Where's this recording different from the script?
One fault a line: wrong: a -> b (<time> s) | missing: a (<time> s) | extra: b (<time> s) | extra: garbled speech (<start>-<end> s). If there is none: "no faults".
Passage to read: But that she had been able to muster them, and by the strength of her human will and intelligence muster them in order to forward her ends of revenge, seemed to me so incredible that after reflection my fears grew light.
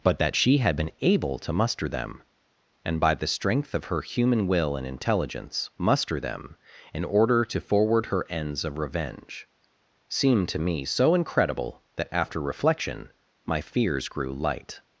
no faults